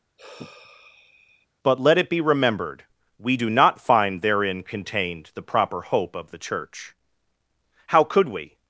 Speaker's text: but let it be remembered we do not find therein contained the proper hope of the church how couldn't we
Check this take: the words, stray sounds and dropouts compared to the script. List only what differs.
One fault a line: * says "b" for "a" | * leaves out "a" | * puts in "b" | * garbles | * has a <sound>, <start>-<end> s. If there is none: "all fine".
* has a sigh, 0.2-1.5 s
* says "could" for "couldn't"